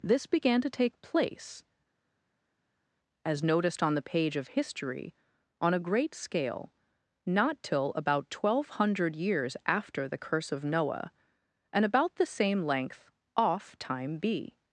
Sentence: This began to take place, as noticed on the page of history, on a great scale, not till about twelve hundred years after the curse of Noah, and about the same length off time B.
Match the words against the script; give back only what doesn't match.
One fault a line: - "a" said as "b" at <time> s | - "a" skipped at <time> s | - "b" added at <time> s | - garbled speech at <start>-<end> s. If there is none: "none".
none